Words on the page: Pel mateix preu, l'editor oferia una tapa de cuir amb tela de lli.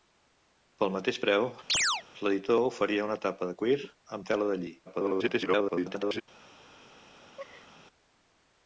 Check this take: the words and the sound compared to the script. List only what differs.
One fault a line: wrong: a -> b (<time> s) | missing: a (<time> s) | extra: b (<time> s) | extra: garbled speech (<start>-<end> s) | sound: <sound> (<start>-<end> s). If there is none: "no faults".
sound: chirp (1.7-2.0 s)
extra: garbled speech (4.9-6.2 s)
sound: laugh (7.2-7.9 s)